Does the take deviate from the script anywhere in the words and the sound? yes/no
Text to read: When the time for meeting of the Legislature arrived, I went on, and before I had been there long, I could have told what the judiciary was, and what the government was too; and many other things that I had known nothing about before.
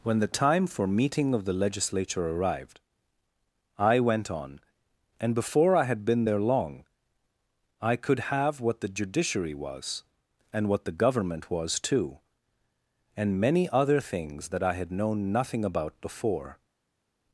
yes